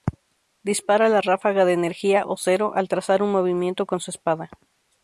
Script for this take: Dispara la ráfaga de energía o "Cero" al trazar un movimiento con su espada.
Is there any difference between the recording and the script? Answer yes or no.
no